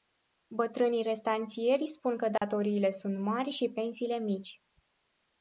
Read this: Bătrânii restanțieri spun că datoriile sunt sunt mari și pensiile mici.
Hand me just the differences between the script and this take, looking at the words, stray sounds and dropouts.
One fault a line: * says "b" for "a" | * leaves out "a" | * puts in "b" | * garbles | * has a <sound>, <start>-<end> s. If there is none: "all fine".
* has a dropout, 2.4-2.4 s
* leaves out "sunt"